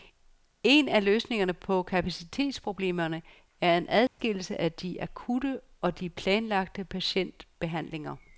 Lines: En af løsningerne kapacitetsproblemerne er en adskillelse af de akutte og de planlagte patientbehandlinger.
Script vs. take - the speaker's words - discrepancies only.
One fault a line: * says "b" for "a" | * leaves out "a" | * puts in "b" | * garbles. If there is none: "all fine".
* puts in "på"